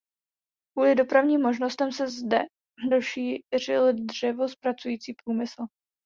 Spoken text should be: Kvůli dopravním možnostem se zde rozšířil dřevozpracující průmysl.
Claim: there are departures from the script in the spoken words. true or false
false